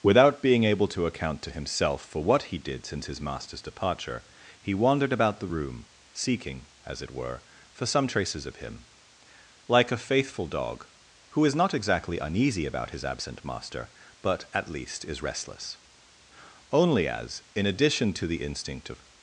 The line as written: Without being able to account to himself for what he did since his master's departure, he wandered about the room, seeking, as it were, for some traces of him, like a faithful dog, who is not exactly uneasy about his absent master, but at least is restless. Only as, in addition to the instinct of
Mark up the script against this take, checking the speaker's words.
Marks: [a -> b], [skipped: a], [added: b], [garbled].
Without being able to account to himself for what he did since his master's departure, he wandered about the room, seeking, as it were, for some traces of him, like a faithful dog, who is not exactly uneasy about his absent master, but at least is restless. Only as, in addition to the instinct of